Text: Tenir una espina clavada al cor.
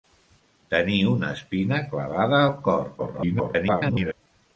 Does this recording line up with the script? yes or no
no